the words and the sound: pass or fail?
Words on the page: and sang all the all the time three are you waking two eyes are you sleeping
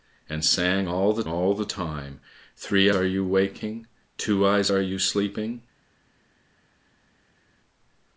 pass